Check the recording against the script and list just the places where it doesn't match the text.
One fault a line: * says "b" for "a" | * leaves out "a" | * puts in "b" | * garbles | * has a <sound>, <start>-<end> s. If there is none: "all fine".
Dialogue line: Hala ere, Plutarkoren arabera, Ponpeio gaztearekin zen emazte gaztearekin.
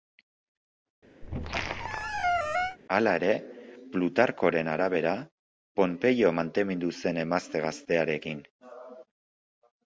* has a squeak, 1.2-2.8 s
* says "maitemindu" for "gaztearekin"